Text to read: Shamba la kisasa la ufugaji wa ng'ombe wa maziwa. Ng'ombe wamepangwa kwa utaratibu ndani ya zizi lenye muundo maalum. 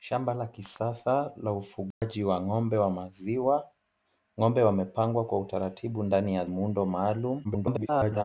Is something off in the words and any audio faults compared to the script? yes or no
yes